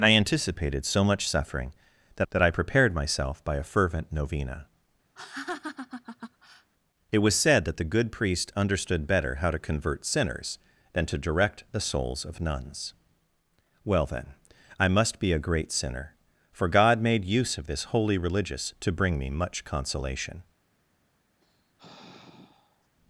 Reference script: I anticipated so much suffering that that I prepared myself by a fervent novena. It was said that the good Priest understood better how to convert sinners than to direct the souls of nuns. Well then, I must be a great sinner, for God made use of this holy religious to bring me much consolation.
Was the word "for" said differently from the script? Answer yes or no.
no